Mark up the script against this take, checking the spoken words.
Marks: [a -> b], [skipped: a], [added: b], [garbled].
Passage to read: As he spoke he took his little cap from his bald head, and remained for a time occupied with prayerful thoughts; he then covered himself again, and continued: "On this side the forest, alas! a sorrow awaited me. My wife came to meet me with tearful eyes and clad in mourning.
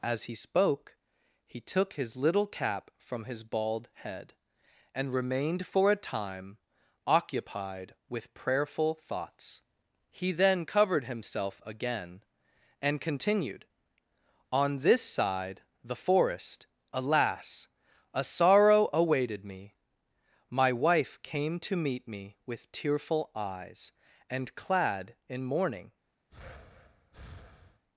As he spoke he took his little cap from his bald head, and remained for a time occupied with prayerful thoughts; he then covered himself again, and continued: "On this side the forest, alas! a sorrow awaited me. My wife came to meet me with tearful eyes and clad in mourning.